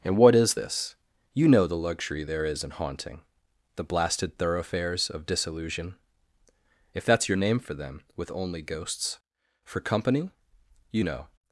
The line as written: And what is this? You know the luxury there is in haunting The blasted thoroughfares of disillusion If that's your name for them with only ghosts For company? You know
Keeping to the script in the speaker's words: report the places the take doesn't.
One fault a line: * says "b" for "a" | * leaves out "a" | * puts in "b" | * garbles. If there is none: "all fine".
all fine